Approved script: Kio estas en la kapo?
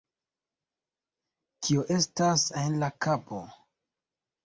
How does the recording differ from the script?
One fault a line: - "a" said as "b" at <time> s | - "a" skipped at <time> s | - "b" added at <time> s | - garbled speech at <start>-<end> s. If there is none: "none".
none